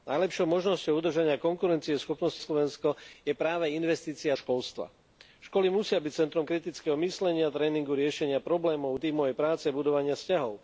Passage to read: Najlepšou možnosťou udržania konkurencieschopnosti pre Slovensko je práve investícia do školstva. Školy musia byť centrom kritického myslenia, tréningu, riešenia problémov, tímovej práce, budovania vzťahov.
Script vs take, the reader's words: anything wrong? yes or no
yes